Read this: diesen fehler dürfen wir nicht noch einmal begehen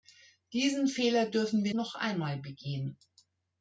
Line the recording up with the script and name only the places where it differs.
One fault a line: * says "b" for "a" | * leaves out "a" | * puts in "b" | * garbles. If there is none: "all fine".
* leaves out "nicht"